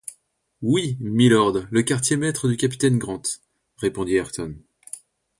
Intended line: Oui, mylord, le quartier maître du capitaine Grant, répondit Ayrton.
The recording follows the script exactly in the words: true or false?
true